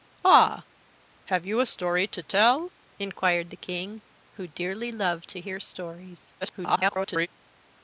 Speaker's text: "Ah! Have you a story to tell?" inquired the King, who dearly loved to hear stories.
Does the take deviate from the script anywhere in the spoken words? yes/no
yes